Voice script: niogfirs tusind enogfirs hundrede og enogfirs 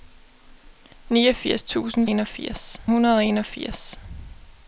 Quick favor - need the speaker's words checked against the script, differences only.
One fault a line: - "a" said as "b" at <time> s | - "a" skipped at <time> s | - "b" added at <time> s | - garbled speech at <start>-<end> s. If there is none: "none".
none